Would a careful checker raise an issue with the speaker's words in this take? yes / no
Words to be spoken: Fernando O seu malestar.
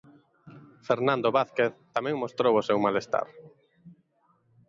yes